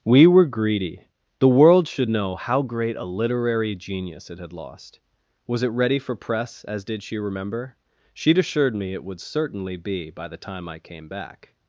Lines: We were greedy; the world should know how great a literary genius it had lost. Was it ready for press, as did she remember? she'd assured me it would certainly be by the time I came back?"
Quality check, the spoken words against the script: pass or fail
pass